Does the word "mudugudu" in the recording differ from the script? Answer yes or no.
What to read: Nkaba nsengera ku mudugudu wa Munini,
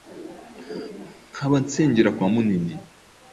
yes